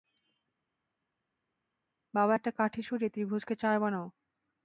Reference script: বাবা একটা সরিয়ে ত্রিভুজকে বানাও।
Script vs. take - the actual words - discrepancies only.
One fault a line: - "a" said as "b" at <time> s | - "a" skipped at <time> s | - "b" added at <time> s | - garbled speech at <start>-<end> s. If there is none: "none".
- "কাঠি" added at 2.5 s
- "চার" added at 3.6 s